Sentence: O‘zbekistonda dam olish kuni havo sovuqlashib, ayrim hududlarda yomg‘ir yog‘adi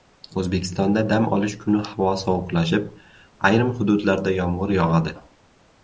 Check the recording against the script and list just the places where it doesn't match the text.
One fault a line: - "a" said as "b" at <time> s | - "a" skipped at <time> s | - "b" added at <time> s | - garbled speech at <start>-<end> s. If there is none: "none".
none